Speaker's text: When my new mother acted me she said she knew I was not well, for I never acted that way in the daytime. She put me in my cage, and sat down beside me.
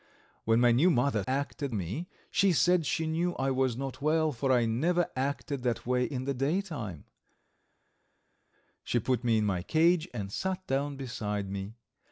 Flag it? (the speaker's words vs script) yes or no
no